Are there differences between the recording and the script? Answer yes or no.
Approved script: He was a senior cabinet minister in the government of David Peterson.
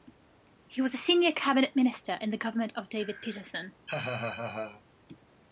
no